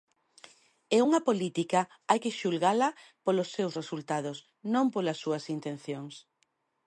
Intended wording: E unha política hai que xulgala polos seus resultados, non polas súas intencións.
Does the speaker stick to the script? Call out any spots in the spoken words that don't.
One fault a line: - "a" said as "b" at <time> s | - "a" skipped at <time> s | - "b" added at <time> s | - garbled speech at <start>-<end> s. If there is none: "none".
none